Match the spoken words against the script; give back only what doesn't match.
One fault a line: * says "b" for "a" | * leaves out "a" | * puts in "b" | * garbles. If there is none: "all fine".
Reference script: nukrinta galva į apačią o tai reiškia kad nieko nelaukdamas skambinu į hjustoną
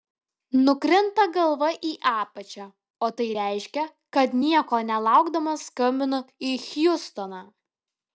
all fine